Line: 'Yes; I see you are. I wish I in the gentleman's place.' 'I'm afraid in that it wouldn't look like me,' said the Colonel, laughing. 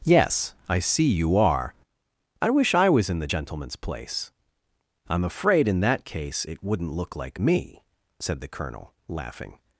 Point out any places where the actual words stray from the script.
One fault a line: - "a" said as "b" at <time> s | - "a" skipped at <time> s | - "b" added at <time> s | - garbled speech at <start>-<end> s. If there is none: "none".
- "was" added at 2.9 s
- "case" added at 6.0 s